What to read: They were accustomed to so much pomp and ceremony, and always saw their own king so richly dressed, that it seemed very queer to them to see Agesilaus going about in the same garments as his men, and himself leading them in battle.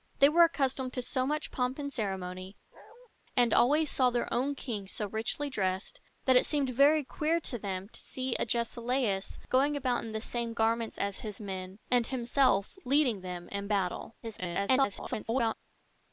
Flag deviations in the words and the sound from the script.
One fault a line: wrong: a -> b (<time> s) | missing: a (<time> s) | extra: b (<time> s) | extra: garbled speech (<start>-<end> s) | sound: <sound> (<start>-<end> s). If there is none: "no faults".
sound: bark (2.7-3.1 s)
extra: garbled speech (14.2-15.5 s)